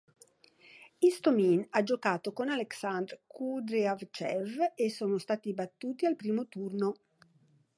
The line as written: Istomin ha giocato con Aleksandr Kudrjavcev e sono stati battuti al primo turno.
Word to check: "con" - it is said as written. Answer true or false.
true